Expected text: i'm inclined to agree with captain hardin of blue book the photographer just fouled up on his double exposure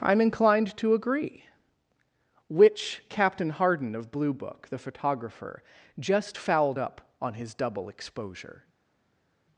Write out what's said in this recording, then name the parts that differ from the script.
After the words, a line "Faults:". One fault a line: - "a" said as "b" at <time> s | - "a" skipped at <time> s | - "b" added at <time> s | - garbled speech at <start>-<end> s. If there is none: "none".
i'm inclined to agree which captain hardin of blue book the photographer just fouled up on his double exposure
Faults:
- "with" said as "which" at 2.5 s